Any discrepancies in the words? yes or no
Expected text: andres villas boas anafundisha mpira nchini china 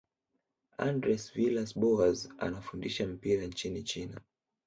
no